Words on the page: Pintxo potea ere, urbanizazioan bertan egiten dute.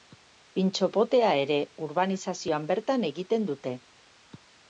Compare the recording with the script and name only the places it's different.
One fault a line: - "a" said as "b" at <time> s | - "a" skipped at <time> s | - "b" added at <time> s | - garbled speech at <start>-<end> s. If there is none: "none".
none